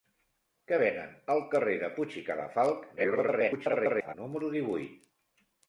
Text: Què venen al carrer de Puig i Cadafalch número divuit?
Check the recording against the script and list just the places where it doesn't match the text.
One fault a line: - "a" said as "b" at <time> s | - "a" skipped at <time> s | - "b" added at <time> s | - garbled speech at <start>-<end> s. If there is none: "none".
- garbled speech at 3.0-4.1 s